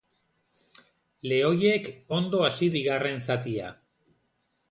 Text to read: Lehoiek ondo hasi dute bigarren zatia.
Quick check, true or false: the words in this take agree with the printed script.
false